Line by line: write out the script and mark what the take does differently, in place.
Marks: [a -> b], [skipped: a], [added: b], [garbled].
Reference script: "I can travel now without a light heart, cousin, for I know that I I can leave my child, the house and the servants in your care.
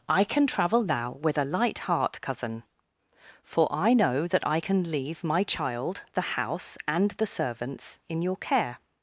"I can travel now [without -> with] a light heart, cousin, for I know that I [skipped: I] can leave my child, the house and the servants in your care.